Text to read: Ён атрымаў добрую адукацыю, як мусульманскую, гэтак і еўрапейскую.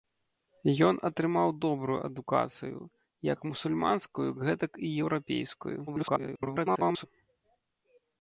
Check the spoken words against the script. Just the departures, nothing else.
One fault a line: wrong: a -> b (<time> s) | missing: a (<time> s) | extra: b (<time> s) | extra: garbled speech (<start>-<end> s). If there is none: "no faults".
extra: garbled speech (5.9-7.1 s)